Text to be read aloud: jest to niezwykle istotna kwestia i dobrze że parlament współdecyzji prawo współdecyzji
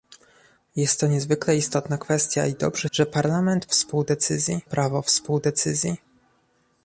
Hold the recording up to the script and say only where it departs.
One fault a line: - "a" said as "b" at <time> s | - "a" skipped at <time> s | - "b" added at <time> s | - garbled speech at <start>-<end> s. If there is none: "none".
none